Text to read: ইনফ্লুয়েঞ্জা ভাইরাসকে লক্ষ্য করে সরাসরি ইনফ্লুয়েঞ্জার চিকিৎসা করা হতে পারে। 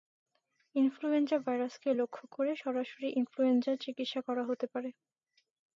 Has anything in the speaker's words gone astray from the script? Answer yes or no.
no